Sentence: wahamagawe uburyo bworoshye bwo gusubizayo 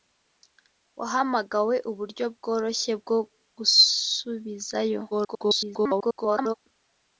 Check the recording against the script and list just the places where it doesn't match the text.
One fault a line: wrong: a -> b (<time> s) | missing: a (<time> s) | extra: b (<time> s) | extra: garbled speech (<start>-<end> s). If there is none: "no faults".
extra: garbled speech (5.1-6.5 s)